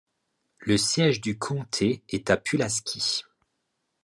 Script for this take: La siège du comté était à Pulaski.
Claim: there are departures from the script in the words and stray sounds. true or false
true